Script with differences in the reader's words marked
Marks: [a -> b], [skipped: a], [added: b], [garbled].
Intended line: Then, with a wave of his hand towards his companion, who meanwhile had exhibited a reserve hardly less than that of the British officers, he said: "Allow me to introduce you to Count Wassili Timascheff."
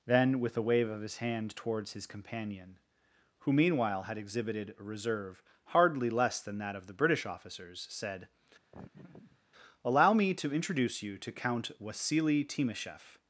Then, with a wave of his hand towards his companion, who meanwhile had exhibited a reserve hardly less than that of the British officers, [skipped: he] said: "Allow me to introduce you to Count Wassili Timascheff."